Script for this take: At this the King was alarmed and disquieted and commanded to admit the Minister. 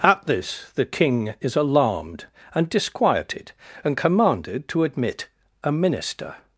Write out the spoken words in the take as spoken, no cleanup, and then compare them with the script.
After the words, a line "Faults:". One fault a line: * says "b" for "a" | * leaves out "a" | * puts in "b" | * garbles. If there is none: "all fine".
At this the King is alarmed and disquieted and commanded to admit a Minister.
Faults:
* says "is" for "was"
* says "a" for "the"